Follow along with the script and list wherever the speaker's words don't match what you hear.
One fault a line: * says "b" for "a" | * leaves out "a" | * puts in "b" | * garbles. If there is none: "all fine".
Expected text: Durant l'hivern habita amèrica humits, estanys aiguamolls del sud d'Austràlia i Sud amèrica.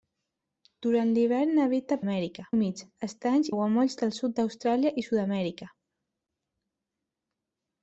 all fine